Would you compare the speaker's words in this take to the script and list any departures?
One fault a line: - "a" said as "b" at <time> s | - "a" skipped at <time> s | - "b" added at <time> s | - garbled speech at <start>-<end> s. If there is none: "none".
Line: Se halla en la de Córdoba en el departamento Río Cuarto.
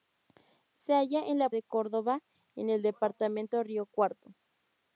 none